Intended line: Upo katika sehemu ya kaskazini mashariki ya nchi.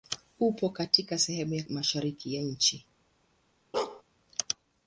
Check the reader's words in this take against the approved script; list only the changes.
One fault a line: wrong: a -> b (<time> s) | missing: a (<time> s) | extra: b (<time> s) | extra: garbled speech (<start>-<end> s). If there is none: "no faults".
missing: kaskazini (1.6 s)